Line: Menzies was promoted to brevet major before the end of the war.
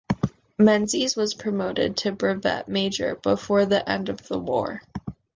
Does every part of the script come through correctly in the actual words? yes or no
yes